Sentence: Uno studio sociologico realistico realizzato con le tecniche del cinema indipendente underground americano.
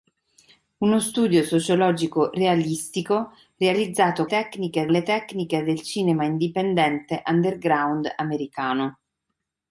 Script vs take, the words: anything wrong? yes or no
yes